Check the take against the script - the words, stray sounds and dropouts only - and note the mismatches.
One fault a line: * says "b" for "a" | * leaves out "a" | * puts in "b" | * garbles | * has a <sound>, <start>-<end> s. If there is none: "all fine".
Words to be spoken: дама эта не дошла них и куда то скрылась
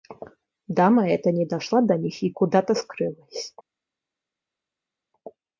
* puts in "до"